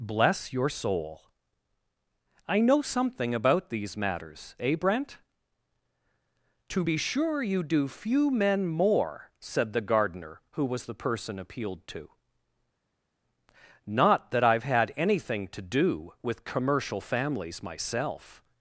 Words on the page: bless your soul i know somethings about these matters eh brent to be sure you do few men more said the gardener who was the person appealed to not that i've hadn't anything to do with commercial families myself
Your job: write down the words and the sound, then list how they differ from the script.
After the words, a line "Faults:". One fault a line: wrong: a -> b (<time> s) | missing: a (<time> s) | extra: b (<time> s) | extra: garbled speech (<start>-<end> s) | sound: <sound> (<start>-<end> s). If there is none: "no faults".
bless your soul i know something about these matters eh brent to be sure you do few men more said the gardener who was the person appealed to not that i've had anything to do with commercial families myself
Faults:
wrong: somethings -> something (2.8 s)
wrong: hadn't -> had (14.6 s)